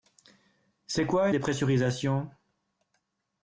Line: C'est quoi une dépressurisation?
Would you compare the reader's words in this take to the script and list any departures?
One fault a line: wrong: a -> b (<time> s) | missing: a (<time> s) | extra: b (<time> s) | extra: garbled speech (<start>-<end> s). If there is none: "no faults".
missing: une (1.3 s)